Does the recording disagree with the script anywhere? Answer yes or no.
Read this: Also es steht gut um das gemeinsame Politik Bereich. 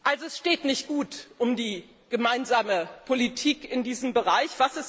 yes